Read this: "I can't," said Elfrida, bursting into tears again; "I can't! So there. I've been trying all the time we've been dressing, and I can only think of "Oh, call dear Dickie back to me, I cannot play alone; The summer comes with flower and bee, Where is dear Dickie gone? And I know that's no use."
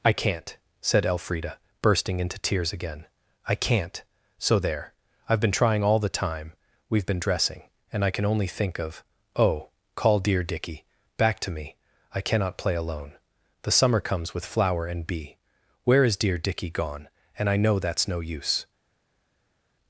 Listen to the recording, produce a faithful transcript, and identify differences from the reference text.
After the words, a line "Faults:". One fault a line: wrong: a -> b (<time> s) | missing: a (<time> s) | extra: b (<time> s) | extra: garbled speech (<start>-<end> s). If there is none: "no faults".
"I can't," said Elfrida, bursting into tears again; "I can't! So there. I've been trying all the time we've been dressing, and I can only think of "Oh, call dear Dickie back to me, I cannot play alone; The summer comes with flower and bee, Where is dear Dickie gone? And I know that's no use."
Faults:
no faults